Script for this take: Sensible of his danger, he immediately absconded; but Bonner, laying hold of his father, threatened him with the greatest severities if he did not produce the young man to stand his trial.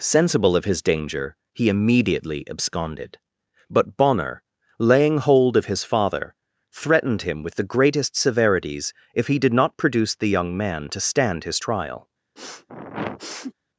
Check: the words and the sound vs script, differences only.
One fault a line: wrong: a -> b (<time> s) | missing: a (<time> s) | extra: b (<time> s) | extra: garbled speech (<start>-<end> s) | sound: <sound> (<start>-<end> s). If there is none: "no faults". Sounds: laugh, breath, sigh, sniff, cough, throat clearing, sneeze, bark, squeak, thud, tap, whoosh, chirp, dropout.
sound: sniff (12.4-13.5 s)